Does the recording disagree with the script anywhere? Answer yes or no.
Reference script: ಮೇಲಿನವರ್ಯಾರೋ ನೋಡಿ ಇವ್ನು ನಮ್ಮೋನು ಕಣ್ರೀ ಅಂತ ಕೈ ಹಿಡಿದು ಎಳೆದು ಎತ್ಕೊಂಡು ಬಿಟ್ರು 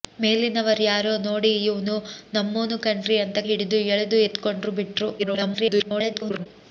yes